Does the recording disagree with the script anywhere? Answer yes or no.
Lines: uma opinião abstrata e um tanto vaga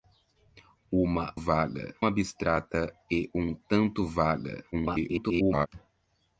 yes